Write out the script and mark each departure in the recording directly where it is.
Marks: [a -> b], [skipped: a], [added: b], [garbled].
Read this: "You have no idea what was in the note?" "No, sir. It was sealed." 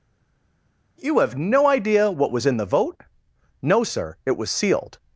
"You have no idea what was in the [note?" -> vote] "No, sir. It was sealed."